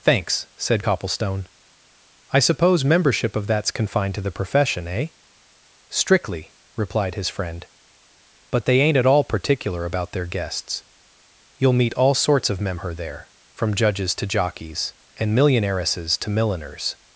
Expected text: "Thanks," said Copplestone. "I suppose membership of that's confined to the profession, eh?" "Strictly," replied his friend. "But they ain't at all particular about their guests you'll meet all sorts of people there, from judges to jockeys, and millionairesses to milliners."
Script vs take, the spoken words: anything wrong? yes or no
yes